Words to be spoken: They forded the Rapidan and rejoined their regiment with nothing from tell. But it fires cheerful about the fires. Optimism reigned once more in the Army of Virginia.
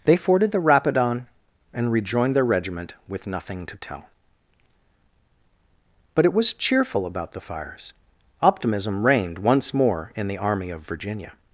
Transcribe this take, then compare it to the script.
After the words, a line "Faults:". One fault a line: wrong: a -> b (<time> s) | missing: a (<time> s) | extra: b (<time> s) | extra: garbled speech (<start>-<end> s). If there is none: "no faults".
They forded the Rapidan and rejoined their regiment with nothing to tell. But it was cheerful about the fires. Optimism reigned once more in the Army of Virginia.
Faults:
wrong: from -> to (3.7 s)
wrong: fires -> was (6.3 s)